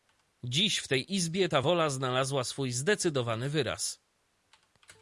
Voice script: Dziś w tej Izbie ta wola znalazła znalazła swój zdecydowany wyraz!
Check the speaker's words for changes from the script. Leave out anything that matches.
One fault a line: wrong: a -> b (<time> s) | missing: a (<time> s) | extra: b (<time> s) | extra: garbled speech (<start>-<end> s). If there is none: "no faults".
missing: znalazła (2.4 s)